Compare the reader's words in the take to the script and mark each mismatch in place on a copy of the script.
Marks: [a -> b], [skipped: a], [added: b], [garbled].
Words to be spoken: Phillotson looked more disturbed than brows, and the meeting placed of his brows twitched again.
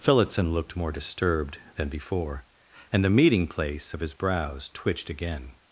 Phillotson looked more disturbed than [brows, -> before] and the meeting [placed -> place] of his brows twitched again.